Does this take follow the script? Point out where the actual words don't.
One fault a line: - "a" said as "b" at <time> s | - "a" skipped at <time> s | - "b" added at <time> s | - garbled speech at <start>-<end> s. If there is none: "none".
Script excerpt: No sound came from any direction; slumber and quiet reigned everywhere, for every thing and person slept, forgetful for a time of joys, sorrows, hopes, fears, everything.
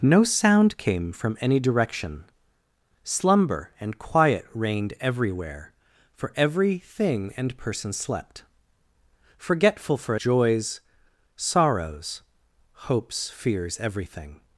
- "a time of" skipped at 10.1 s